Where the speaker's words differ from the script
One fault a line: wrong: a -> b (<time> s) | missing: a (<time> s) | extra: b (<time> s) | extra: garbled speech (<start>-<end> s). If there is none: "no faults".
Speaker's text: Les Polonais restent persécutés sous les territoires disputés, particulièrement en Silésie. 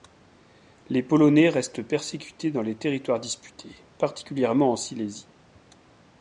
wrong: sous -> dans (2.5 s)